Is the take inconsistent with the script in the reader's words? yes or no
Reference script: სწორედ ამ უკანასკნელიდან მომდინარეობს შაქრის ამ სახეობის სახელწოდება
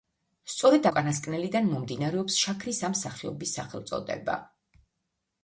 yes